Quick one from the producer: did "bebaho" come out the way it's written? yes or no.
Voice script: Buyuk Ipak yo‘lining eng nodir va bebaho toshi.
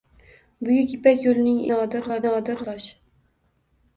no